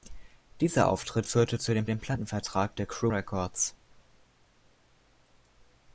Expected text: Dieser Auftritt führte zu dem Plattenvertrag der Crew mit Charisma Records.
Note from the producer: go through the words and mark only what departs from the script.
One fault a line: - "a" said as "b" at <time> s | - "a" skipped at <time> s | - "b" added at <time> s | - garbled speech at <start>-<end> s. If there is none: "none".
- "dem" added at 1.9 s
- "mit Charisma" skipped at 3.1 s